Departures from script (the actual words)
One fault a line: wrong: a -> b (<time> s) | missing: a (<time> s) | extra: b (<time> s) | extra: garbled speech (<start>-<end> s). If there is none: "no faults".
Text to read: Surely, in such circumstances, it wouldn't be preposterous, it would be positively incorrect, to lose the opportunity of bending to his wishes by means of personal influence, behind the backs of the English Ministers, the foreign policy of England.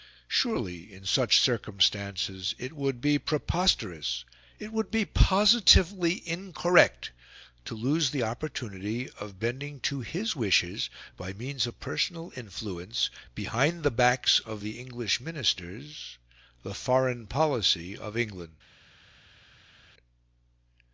wrong: wouldn't -> would (2.7 s)